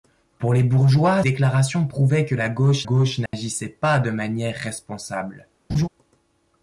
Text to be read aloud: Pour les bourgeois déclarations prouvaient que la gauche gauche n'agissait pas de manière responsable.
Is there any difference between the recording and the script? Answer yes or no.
no